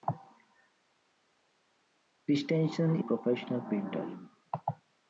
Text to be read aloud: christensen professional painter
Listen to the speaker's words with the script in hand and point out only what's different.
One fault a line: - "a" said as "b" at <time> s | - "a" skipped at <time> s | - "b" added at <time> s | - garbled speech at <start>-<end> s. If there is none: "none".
none